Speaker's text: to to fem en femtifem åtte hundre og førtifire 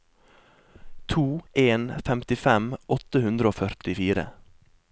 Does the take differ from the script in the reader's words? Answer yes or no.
yes